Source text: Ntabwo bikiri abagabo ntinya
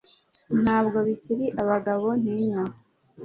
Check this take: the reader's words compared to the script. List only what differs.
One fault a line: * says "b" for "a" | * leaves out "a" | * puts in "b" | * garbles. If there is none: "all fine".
all fine